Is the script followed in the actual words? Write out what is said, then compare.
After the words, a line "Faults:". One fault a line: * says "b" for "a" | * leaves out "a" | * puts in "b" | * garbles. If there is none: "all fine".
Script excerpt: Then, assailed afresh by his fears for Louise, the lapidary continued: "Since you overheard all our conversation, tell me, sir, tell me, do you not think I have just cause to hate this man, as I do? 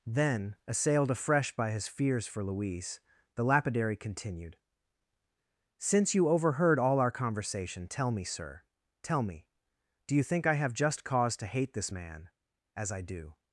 Then, assailed afresh by his fears for Louise, the lapidary continued: "Since you overheard all our conversation, tell me, sir, tell me, do you think I have just cause to hate this man, as I do?
Faults:
* leaves out "not"